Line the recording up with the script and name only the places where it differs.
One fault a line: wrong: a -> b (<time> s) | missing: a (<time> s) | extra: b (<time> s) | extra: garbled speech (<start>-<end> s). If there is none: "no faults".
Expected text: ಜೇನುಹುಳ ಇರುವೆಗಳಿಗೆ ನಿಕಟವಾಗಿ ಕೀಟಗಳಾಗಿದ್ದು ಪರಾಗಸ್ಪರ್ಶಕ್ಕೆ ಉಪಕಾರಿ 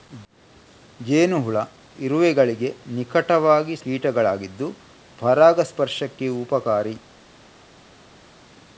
no faults